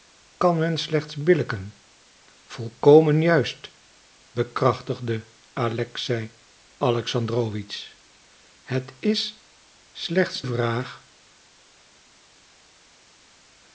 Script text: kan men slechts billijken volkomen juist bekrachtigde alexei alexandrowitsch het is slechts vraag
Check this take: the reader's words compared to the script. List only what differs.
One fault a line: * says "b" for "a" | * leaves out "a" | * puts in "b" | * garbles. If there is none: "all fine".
all fine